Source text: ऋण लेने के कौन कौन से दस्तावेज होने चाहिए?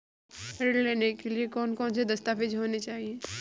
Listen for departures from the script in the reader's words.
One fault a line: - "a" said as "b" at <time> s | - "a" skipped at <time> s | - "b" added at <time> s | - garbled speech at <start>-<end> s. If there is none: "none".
- "लिए" added at 1.3 s